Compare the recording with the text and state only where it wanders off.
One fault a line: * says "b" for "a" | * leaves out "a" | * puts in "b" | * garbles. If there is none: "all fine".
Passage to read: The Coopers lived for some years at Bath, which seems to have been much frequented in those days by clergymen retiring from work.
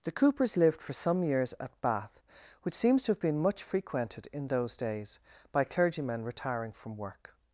all fine